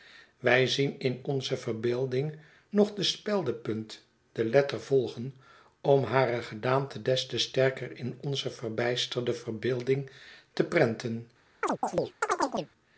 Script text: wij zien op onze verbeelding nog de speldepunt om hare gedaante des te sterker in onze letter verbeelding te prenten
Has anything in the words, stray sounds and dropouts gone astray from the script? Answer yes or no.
yes